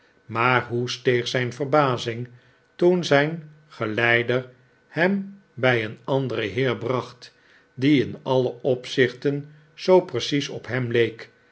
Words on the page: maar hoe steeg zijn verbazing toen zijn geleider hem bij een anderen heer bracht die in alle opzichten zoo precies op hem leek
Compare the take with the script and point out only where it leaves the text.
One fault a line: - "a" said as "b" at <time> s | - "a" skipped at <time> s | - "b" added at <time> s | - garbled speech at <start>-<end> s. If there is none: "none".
none